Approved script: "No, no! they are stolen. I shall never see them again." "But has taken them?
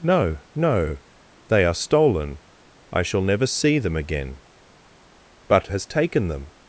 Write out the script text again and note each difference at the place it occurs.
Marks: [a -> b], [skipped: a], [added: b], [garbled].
"No, no! they are stolen. I shall never see them again." "But has taken them?